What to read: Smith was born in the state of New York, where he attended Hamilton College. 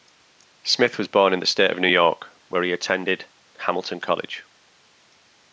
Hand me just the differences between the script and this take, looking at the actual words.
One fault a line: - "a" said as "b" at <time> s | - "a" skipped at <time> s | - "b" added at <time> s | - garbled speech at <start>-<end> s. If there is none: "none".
none